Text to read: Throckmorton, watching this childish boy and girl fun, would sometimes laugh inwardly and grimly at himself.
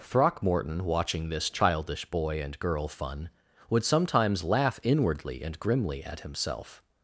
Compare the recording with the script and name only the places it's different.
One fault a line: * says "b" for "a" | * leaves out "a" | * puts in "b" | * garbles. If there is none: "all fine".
all fine